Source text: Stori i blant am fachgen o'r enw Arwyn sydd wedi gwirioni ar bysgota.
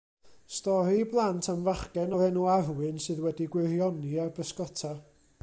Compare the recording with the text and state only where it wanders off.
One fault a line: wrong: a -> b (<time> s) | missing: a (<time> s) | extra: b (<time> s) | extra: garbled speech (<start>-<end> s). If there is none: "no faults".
no faults